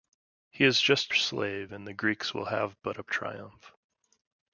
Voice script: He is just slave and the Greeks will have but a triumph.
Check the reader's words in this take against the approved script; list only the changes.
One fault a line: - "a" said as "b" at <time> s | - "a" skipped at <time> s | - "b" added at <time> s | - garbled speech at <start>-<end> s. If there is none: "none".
none